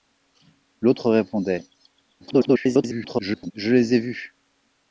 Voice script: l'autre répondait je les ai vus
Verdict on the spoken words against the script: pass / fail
fail